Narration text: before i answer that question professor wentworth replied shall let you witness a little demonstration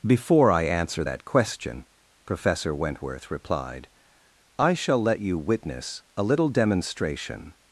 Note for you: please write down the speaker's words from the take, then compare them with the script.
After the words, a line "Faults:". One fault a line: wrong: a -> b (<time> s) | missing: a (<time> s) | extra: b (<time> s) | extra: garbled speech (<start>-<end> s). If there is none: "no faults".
before i answer that question professor wentworth replied i shall let you witness a little demonstration
Faults:
extra: i (4.6 s)